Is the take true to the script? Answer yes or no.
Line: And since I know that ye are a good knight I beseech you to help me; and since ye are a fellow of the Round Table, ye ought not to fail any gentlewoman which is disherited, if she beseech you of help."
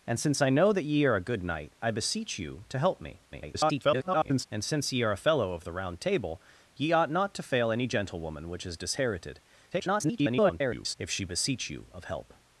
no